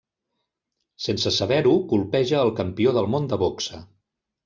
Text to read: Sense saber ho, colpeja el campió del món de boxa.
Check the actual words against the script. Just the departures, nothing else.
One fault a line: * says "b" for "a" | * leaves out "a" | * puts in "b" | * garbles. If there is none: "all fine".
all fine